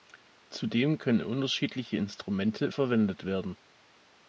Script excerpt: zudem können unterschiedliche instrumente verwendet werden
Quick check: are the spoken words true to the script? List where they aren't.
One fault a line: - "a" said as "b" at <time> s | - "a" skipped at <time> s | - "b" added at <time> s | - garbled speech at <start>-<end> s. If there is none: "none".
none